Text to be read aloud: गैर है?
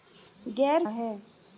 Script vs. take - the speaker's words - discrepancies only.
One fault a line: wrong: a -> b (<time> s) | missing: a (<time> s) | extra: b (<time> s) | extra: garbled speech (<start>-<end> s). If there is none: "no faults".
no faults